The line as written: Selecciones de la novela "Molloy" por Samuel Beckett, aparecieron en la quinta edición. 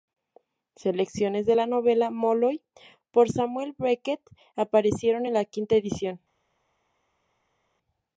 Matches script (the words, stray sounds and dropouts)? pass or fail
pass